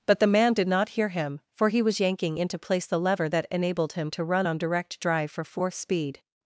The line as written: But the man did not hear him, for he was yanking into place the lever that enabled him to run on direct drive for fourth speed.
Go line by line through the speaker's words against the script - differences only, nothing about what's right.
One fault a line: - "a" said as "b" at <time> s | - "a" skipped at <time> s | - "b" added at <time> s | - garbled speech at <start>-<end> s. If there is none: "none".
none